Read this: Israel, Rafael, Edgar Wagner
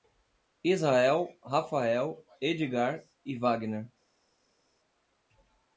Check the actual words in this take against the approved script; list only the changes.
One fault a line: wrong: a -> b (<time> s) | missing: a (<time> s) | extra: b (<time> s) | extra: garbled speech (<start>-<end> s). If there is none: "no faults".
extra: e (3.3 s)